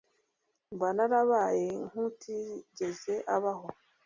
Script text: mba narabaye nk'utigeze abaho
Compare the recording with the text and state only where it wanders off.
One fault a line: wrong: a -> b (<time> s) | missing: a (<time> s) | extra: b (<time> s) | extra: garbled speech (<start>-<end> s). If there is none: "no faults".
no faults